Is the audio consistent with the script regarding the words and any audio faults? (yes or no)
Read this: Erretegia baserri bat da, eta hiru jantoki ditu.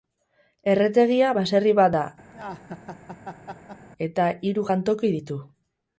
no